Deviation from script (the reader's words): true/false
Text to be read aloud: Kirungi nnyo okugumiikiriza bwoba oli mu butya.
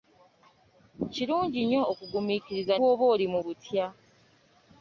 false